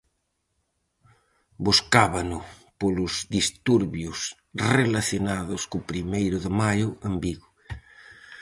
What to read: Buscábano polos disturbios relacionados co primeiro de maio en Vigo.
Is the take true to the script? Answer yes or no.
yes